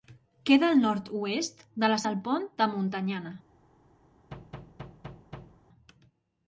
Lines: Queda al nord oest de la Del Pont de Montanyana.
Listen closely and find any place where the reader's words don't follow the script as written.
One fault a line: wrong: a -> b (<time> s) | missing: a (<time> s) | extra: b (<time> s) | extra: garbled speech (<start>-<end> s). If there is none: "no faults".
no faults